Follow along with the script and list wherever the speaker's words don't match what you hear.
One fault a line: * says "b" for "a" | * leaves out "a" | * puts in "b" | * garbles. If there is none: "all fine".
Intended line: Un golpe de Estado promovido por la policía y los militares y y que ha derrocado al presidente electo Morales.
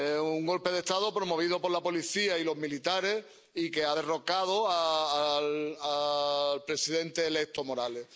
* leaves out "y"